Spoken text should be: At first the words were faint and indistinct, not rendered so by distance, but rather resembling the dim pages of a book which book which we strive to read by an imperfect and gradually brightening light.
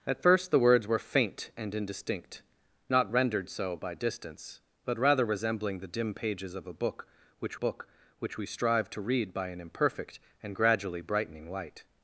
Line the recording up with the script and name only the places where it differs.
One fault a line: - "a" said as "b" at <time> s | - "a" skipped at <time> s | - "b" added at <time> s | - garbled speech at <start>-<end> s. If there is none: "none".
none